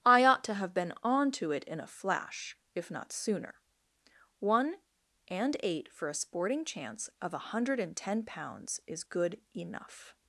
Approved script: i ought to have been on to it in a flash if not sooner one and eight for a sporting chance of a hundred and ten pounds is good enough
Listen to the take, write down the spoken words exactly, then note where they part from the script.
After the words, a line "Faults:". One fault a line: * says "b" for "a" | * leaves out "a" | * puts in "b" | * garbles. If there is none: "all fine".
i ought to have been on to it in a flash if not sooner one and eight for a sporting chance of a hundred and ten pounds is good enough
Faults:
all fine